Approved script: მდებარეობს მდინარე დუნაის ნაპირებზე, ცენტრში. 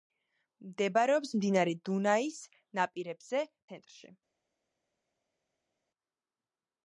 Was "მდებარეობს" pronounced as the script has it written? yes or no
yes